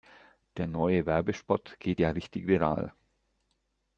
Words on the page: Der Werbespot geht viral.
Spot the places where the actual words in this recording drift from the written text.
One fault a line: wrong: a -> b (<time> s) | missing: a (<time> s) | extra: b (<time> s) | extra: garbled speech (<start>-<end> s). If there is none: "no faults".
extra: neue (0.7 s)
extra: ja richtig (2.0 s)